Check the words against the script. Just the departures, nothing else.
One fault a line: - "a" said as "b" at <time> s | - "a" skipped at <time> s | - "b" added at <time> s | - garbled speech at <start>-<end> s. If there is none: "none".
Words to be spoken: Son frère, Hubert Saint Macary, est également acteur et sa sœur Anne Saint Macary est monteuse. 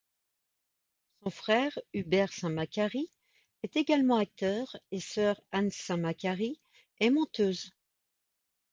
- "sa" skipped at 5.0 s